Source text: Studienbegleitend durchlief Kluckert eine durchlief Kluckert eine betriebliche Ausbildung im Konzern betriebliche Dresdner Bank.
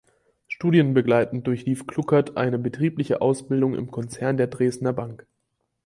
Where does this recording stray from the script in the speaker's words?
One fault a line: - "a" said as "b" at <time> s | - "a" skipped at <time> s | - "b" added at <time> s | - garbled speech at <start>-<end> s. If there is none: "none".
- "durchlief Kluckert eine" skipped at 2.6 s
- "betriebliche" said as "der" at 4.4 s